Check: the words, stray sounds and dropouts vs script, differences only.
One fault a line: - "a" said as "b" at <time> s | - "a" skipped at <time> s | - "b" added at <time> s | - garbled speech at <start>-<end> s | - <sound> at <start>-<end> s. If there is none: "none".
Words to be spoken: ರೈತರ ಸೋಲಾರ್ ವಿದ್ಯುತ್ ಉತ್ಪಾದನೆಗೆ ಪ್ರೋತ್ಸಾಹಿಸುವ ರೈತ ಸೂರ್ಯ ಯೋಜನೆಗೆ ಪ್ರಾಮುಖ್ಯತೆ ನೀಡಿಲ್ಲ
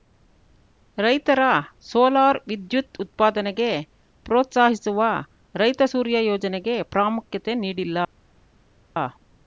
none